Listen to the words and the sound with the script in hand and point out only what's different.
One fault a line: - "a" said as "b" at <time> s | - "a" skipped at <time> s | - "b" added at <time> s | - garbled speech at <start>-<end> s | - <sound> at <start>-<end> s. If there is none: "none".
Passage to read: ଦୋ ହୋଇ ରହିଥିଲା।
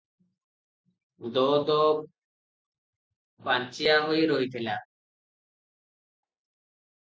- "ଦୋ ପାଞ୍ଚିଆ" added at 1.7 s